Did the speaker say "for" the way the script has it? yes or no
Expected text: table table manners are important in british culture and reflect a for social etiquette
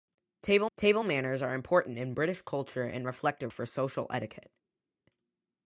yes